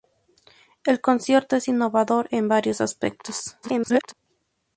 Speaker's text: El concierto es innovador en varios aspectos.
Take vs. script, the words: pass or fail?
fail